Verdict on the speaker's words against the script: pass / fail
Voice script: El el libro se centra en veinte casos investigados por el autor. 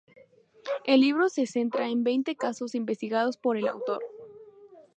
fail